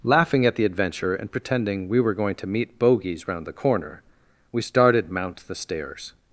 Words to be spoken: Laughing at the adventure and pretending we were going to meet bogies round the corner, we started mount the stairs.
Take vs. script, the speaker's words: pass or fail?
pass